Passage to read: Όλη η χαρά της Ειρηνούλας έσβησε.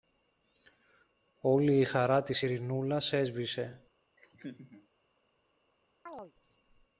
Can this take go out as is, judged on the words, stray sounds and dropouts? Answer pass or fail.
fail